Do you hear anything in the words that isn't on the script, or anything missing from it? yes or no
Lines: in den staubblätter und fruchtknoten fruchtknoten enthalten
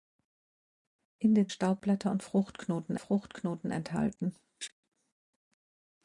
no